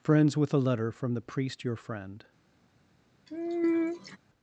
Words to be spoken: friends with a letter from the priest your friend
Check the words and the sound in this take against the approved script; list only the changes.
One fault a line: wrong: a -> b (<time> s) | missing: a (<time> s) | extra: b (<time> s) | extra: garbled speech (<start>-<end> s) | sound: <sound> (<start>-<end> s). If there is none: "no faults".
sound: sigh (3.3-4.2 s)